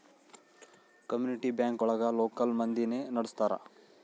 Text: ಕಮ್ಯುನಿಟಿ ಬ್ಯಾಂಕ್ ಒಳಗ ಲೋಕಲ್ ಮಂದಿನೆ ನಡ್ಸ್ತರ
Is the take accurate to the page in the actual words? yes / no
yes